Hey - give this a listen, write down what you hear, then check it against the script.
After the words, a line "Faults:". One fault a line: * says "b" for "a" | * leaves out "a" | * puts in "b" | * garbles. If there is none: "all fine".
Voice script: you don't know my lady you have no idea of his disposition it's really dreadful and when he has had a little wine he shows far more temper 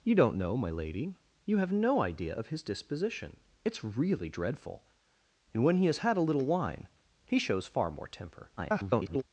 you don't know my lady you have no idea of his disposition it's really dreadful and when he has had a little wine he shows far more temper [garbled]
Faults:
* garbles